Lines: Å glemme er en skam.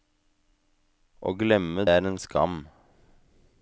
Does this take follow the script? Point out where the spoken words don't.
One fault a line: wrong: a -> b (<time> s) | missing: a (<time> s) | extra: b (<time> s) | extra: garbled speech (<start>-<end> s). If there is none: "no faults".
no faults